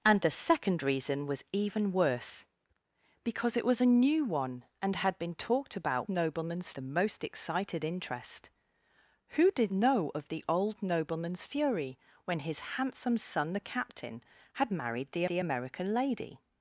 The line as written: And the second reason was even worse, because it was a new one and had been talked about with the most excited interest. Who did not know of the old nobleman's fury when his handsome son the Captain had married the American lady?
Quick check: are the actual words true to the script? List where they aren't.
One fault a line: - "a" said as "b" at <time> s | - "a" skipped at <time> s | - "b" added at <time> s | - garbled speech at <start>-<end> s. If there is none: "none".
- "with" said as "nobleman's" at 6.1 s
- "not" skipped at 9.7 s
- "the" added at 15.3 s